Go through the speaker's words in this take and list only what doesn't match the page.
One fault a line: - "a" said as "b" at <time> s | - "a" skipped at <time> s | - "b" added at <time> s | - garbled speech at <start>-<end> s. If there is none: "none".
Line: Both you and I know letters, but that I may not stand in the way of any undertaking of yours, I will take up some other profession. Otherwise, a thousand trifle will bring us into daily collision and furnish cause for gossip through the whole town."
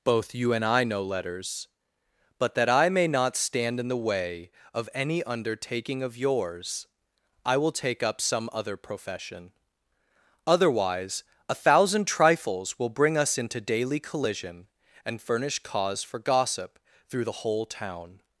- "trifle" said as "trifles" at 12.1 s